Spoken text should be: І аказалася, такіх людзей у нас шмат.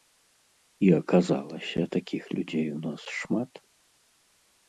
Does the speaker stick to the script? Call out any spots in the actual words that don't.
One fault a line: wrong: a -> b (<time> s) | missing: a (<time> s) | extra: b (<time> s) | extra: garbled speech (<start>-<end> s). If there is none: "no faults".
no faults